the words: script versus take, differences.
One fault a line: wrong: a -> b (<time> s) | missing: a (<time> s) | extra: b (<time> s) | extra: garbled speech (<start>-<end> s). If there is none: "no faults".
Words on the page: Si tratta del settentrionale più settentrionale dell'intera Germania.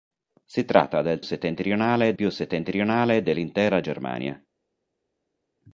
no faults